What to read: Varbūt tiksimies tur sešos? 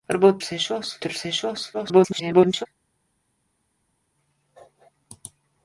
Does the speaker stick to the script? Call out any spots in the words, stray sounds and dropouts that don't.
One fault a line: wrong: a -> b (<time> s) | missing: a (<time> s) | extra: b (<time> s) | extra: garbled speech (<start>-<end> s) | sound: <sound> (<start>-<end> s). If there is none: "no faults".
wrong: tiksimies -> sešos (0.5 s)
extra: garbled speech (1.7-2.7 s)